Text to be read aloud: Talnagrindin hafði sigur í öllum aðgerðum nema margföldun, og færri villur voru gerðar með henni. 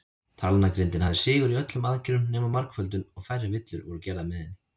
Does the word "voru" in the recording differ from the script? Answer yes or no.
no